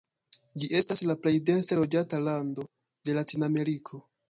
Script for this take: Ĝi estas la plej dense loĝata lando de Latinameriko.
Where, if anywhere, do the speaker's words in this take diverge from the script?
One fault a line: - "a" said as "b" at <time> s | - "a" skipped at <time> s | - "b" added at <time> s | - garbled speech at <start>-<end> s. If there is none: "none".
none